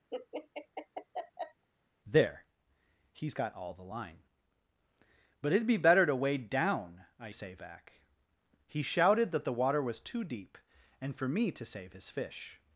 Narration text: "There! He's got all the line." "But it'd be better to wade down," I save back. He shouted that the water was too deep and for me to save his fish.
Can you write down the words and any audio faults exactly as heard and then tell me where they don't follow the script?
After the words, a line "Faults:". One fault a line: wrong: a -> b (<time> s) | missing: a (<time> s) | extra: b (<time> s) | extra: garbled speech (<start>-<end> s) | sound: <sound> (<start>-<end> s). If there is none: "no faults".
"There! He's got all the line." "But it'd be better to wade down," I save back. He shouted that the water was too deep and for me to save his fish.
Faults:
sound: laugh (0.1-1.6 s)